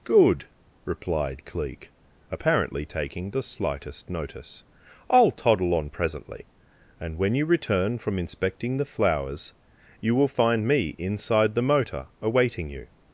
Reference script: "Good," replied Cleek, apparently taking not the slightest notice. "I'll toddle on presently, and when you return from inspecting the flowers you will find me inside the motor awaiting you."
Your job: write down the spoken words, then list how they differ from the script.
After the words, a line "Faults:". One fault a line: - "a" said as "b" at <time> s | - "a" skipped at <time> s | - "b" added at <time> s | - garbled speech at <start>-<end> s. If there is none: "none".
"Good," replied Cleek, apparently taking the slightest notice. "I'll toddle on presently, and when you return from inspecting the flowers you will find me inside the motor awaiting you."
Faults:
- "not" skipped at 3.3 s